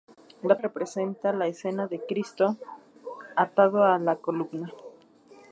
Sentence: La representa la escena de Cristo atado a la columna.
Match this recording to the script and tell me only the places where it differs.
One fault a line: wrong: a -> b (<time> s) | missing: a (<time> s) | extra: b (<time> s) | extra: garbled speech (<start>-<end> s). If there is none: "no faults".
no faults